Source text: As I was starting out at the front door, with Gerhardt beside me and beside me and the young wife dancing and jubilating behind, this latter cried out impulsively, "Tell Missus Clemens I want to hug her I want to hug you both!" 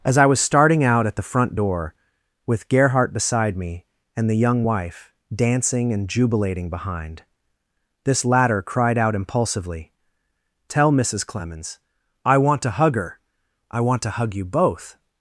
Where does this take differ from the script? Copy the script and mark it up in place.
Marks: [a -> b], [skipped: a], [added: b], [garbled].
As I was starting out at the front door, with Gerhardt beside me and [skipped: beside me and] the young wife dancing and jubilating behind, this latter cried out impulsively, "Tell Missus Clemens I want to hug her I want to hug you both!"